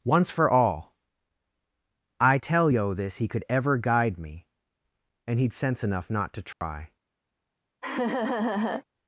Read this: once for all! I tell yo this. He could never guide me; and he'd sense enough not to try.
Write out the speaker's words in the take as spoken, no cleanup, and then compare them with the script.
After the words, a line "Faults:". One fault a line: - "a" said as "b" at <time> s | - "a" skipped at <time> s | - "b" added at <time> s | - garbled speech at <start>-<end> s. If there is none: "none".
once for all! I tell yo this. He could ever guide me; and he'd sense enough not to try.
Faults:
- "never" said as "ever" at 3.5 s